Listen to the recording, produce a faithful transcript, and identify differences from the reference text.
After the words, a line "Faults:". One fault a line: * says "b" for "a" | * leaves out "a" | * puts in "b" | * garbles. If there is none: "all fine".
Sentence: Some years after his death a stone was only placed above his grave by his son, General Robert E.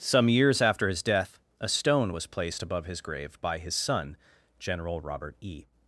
Some years after his death a stone was placed above his grave by his son, General Robert E.
Faults:
* leaves out "only"